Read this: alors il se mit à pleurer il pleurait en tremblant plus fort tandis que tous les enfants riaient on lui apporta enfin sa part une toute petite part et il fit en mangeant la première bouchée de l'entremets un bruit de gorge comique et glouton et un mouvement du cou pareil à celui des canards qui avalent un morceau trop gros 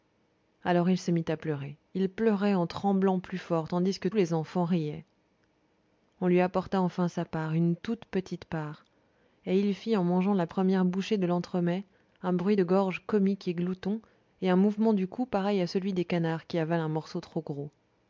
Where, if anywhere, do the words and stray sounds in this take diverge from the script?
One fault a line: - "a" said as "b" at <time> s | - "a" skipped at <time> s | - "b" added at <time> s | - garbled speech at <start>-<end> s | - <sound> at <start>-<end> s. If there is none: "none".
- "tous" skipped at 4.1 s